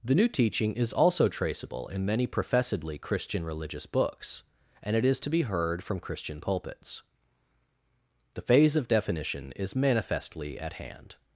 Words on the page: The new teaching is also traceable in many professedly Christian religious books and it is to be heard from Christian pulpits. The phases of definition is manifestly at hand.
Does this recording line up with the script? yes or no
no